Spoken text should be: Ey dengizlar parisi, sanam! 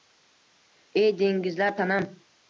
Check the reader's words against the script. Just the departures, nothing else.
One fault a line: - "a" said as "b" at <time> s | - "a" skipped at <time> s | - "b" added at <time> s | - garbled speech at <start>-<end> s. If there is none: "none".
- "parisi" skipped at 1.8 s